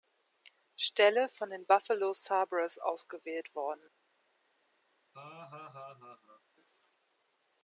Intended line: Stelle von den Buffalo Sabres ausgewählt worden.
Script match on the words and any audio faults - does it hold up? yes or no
no